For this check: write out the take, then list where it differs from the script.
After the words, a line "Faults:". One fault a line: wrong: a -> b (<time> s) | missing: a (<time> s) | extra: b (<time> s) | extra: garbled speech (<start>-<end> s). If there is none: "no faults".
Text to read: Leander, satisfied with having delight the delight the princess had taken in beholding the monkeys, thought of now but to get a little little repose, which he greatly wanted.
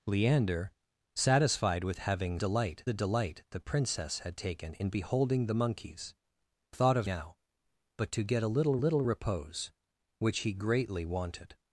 Leander, satisfied with having delight the delight the princess had taken in beholding the monkeys, thought of now but to get a little little repose, which he greatly wanted.
Faults:
no faults